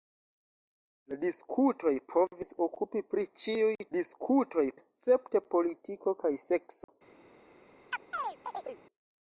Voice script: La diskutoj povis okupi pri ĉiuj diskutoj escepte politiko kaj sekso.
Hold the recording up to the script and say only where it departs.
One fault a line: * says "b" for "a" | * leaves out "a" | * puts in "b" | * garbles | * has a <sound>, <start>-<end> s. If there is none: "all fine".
* has a dropout, 6.8-6.9 s
* has a chirp, 7.9-8.8 s